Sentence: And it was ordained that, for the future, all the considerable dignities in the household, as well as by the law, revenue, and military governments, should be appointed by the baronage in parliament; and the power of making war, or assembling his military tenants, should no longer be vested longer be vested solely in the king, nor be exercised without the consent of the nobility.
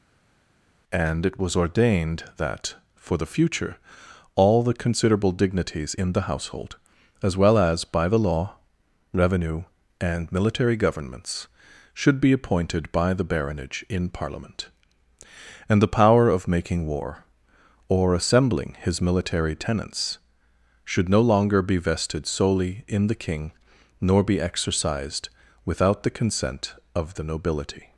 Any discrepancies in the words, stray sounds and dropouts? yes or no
yes